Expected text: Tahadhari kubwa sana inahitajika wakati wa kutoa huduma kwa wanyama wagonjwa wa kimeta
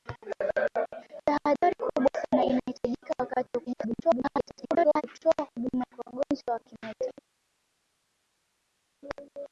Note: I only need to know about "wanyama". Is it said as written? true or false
false